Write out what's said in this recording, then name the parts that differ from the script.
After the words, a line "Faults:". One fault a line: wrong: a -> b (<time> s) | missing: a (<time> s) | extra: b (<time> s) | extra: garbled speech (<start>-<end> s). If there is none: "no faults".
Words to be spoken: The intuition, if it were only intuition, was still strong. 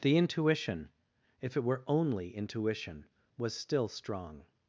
The intuition, if it were only intuition, was still strong.
Faults:
no faults